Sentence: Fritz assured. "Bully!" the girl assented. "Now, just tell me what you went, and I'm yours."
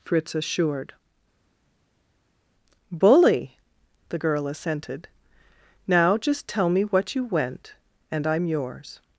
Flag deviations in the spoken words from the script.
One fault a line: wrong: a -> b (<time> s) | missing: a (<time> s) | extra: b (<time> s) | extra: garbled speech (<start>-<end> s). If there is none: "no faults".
no faults